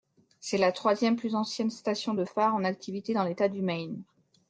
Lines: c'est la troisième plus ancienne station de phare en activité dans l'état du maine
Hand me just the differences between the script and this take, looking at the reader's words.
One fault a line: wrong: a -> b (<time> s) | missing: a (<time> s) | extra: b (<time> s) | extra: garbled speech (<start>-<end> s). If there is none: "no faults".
no faults